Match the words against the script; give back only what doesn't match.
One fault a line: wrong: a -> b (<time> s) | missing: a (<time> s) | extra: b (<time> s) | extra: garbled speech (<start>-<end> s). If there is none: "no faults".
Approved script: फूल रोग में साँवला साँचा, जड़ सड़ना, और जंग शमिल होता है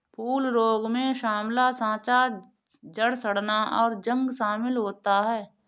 no faults